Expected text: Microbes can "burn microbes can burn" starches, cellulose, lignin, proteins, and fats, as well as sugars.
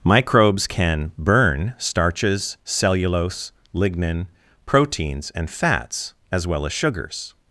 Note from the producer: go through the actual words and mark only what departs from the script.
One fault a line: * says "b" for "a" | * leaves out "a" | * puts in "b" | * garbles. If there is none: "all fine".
* leaves out "microbes can burn"